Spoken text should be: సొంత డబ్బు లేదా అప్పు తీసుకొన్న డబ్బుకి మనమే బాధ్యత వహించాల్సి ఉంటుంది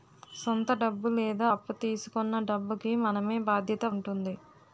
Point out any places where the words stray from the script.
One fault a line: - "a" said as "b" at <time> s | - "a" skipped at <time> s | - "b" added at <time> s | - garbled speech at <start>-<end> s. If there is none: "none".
- "వహించాల్సి" skipped at 3.8 s